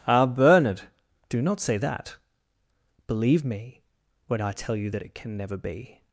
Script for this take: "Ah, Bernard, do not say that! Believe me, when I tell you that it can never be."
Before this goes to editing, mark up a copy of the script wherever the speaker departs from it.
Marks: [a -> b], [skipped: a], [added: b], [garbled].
"Ah, Bernard, do not say that! Believe me, when I tell you that it can never be."